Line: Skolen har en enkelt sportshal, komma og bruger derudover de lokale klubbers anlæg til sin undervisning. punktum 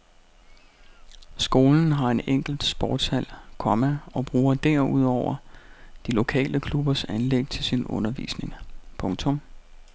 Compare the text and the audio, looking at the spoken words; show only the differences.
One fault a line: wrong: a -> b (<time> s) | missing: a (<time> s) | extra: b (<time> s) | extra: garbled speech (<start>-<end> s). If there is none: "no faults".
no faults